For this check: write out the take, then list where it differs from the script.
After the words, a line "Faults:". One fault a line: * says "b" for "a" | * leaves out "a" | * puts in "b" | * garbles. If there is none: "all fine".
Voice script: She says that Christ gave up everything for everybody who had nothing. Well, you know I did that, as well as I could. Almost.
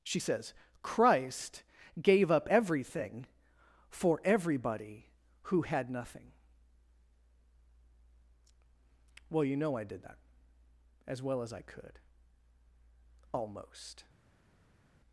She says Christ gave up everything for everybody who had nothing. Well, you know I did that, as well as I could. Almost.
Faults:
* leaves out "that"